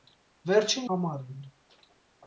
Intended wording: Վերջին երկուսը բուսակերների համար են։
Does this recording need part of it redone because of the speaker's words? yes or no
yes